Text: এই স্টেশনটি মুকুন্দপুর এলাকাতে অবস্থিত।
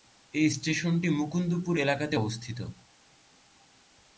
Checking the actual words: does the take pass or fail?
pass